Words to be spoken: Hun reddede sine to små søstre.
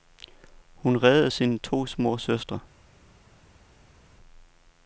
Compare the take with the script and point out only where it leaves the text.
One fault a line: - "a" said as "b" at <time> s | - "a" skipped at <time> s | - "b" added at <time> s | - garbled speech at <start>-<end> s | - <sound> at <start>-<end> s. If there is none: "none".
none